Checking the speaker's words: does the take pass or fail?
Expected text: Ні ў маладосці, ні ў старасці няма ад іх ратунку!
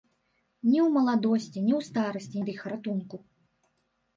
fail